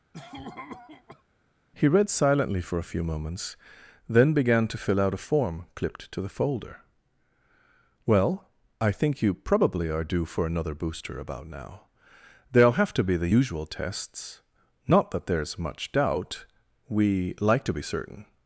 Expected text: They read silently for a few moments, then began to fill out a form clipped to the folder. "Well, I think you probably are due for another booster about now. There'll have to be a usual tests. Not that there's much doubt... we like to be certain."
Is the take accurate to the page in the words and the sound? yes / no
no